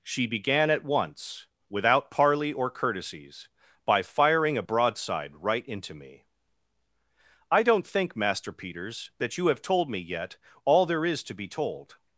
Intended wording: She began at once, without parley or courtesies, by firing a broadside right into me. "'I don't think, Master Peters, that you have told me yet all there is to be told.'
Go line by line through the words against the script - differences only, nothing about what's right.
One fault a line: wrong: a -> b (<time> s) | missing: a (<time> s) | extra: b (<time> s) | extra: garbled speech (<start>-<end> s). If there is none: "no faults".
no faults